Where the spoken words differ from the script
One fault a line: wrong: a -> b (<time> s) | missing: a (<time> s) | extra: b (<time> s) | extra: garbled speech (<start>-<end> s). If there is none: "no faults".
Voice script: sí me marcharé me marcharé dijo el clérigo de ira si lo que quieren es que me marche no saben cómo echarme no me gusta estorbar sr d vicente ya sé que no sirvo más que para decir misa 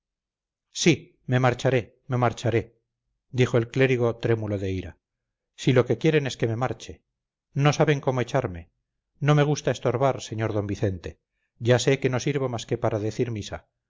extra: trémulo (4.2 s)